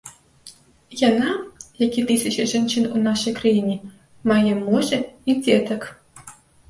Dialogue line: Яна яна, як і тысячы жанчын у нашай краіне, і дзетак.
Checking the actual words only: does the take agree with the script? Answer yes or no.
no